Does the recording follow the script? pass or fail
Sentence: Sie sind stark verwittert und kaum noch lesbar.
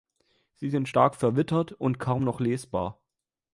pass